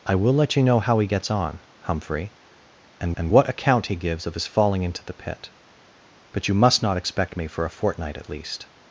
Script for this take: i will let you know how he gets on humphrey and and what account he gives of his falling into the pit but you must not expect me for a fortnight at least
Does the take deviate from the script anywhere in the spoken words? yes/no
no